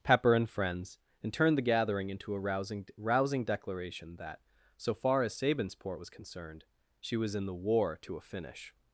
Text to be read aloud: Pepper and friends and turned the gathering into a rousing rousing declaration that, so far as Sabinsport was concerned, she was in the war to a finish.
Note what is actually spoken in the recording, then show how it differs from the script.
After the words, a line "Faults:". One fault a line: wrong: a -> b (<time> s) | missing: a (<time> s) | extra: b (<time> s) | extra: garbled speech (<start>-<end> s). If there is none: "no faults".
Pepper and friends and turned the gathering into a rousing rousing declaration that, so far as Sabinsport was concerned, she was in the war to a finish.
Faults:
no faults